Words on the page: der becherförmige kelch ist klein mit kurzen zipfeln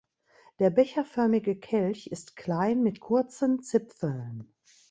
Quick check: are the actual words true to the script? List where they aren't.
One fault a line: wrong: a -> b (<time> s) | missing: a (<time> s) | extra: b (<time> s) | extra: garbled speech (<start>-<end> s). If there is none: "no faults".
no faults